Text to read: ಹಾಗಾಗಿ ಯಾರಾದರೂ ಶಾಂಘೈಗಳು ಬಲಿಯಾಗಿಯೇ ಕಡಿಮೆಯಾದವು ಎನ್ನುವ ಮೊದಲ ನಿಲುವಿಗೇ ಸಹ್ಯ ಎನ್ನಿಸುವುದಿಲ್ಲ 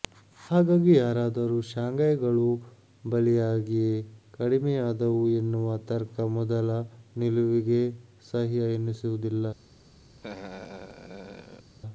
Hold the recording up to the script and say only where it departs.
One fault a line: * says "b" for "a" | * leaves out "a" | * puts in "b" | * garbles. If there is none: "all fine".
* puts in "ತರ್ಕ"